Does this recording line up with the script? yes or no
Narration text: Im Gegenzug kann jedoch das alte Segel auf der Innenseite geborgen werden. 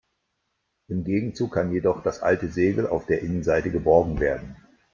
yes